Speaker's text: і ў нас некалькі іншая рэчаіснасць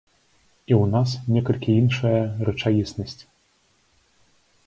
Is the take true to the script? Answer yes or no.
yes